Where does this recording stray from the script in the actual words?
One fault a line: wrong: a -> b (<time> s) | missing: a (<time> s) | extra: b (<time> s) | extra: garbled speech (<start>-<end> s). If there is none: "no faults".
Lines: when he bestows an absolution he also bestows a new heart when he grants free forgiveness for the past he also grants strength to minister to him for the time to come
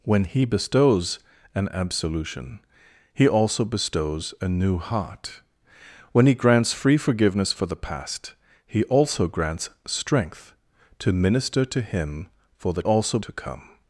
wrong: time -> also (12.8 s)